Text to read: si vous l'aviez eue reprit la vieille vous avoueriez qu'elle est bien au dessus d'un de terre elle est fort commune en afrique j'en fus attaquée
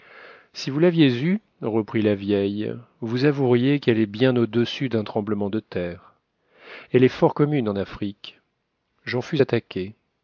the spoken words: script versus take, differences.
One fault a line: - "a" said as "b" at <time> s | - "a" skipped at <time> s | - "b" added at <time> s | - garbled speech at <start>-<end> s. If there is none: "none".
- "tremblement" added at 5.0 s